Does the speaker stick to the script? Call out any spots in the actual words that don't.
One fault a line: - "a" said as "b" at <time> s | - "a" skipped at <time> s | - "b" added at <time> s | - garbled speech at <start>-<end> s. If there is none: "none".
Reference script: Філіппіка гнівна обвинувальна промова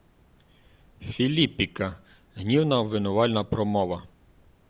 none